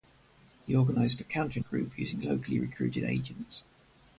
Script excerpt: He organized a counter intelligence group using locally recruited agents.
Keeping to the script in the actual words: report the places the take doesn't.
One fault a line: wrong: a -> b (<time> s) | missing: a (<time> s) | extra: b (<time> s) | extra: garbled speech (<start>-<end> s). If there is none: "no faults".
missing: intelligence (1.6 s)